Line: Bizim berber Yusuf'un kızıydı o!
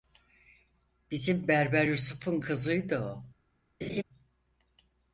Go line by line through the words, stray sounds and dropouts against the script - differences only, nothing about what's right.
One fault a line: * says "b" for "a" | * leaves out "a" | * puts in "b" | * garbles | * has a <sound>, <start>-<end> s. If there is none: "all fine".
* has a laugh, 3.8-4.0 s